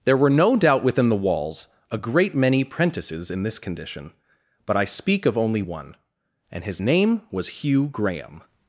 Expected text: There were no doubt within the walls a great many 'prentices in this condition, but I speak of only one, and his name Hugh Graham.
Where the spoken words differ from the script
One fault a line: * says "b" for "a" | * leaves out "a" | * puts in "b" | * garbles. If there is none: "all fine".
* puts in "was"